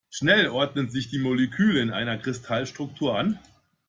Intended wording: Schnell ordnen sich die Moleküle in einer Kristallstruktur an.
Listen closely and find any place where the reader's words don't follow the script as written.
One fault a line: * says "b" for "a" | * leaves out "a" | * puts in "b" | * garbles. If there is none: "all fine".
all fine